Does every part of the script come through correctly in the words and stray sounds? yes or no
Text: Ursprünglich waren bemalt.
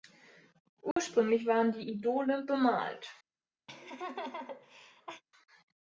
no